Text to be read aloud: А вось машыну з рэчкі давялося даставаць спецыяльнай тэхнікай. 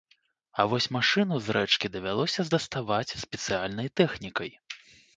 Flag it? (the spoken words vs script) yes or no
no